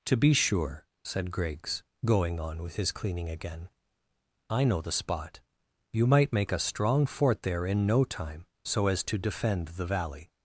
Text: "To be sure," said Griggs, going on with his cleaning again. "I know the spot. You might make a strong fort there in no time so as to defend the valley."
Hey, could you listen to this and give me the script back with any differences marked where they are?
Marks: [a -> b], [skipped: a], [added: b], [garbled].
"To be sure," said Griggs, going on with his cleaning again. "I know the spot. You might make a strong fort there in no time so as to defend the valley."